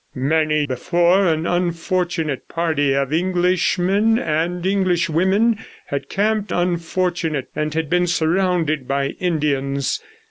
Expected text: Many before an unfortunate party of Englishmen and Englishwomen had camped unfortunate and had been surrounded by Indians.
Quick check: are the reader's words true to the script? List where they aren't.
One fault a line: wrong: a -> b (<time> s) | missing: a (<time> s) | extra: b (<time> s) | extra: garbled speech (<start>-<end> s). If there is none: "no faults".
no faults